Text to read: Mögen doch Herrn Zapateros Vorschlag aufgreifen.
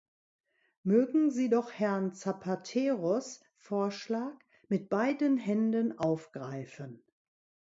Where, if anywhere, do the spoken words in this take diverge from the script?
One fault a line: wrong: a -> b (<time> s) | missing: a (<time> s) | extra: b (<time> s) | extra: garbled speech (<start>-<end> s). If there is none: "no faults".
extra: sie (1.3 s)
extra: mit beiden Händen (4.7 s)